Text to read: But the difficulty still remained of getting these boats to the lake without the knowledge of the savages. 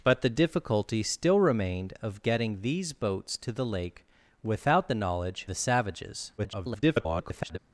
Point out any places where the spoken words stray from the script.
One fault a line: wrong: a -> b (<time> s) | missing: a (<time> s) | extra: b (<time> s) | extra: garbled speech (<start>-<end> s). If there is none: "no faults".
missing: of (5.5 s)
extra: garbled speech (6.4-7.6 s)